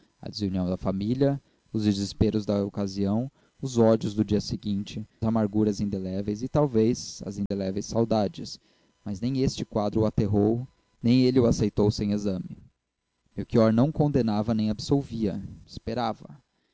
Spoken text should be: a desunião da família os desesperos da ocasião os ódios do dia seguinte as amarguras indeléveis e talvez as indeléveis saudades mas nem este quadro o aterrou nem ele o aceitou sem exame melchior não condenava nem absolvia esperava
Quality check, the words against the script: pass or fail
fail